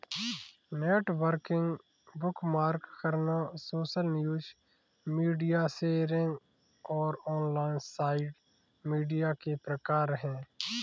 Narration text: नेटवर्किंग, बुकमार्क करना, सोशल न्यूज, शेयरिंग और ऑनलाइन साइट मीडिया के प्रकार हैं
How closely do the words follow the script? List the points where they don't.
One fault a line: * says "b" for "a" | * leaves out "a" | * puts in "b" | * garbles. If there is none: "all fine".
* puts in "मीडिया"